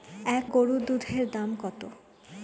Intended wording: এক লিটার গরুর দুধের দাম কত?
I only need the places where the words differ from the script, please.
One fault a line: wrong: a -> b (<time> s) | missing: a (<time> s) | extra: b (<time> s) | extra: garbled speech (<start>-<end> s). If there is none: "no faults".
missing: লিটার (0.5 s)